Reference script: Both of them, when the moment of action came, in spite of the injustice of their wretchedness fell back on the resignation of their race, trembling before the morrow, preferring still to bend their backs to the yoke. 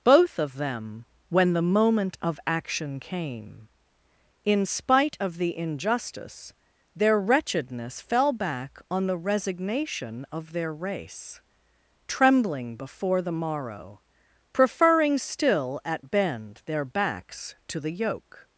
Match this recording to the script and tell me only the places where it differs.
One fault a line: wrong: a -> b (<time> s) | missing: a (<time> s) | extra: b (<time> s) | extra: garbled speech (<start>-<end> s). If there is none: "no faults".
missing: of (6.5 s)
wrong: to -> at (15.8 s)